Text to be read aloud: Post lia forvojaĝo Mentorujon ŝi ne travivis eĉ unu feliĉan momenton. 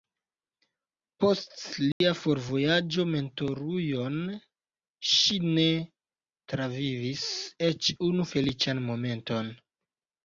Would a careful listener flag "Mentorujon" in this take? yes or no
no